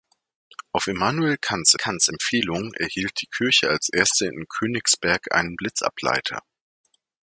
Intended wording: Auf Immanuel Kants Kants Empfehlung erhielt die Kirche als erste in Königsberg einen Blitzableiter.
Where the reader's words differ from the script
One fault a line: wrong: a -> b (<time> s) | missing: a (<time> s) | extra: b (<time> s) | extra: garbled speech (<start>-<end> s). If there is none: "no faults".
no faults